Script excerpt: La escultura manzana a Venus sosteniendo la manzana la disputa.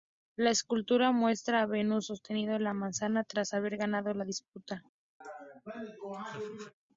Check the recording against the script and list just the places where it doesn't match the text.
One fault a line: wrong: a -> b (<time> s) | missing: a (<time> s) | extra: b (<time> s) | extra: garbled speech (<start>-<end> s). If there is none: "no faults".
wrong: manzana -> muestra (1.1 s)
extra: tras haber ganado (3.2 s)